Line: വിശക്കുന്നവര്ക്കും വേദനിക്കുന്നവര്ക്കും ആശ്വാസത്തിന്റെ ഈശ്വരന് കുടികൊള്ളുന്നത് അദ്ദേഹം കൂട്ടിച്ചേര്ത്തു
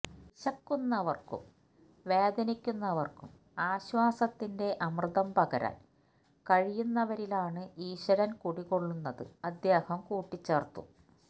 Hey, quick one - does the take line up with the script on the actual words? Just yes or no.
no